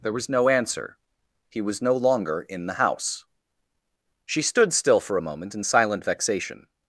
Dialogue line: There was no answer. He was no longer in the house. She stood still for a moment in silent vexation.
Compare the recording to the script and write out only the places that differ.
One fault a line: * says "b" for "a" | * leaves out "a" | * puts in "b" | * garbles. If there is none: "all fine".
all fine